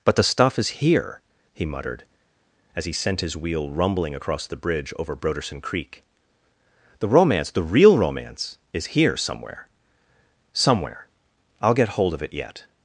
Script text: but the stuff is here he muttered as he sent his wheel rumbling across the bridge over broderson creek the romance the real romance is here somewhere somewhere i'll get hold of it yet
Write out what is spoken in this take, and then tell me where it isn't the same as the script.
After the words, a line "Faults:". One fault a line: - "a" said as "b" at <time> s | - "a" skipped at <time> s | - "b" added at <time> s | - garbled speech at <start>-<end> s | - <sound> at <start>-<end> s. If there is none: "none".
but the stuff is here he muttered as he sent his wheel rumbling across the bridge over broderson creek the romance the real romance is here somewhere somewhere i'll get hold of it yet
Faults:
none